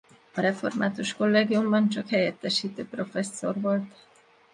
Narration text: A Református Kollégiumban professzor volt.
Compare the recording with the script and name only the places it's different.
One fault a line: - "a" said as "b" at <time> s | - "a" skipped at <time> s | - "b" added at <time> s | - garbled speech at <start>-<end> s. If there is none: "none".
- "csak helyettesítő" added at 1.9 s